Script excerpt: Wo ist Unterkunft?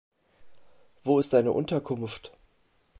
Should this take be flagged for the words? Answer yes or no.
yes